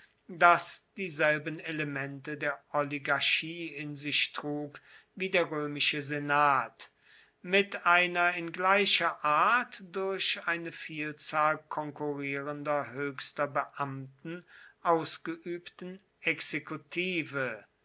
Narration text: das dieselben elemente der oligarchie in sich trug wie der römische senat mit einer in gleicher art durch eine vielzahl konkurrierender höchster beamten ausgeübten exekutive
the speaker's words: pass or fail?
pass